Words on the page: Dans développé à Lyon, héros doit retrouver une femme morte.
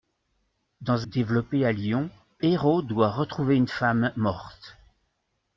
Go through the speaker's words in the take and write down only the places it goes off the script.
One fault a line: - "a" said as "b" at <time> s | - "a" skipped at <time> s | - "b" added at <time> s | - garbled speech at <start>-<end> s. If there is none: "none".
none